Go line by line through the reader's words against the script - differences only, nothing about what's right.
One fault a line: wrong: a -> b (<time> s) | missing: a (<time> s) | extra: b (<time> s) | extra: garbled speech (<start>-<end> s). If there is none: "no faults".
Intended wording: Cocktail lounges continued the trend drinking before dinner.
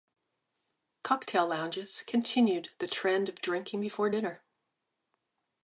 extra: of (3.3 s)